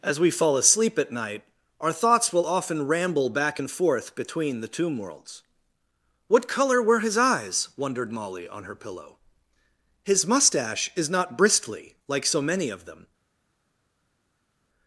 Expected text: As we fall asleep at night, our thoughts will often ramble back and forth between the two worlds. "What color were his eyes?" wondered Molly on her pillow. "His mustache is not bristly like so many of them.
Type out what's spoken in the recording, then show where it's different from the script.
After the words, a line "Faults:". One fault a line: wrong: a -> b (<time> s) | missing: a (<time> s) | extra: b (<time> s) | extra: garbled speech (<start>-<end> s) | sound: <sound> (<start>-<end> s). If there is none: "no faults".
As we fall asleep at night, our thoughts will often ramble back and forth between the tomb worlds. "What color were his eyes?" wondered Molly on her pillow. "His mustache is not bristly like so many of them.
Faults:
wrong: two -> tomb (4.7 s)